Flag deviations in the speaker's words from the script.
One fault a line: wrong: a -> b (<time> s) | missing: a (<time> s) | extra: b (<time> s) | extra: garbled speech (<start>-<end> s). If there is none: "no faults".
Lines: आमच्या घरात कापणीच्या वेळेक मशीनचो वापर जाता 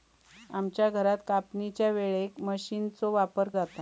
no faults